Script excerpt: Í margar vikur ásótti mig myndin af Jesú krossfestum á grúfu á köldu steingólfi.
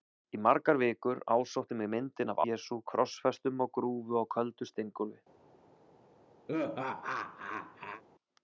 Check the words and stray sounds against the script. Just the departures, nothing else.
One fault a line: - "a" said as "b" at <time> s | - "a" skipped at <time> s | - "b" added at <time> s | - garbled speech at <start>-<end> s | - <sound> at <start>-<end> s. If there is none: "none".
- laugh at 6.5-8.0 s